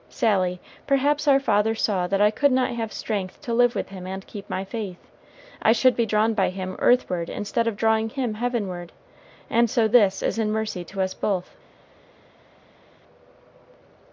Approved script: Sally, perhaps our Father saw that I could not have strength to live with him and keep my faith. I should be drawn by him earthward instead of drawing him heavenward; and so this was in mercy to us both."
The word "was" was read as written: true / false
false